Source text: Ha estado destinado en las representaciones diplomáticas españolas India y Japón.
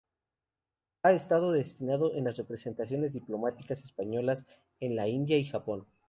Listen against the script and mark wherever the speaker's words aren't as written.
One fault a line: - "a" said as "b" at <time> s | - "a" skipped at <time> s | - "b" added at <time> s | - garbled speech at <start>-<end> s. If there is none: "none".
- "en la" added at 4.8 s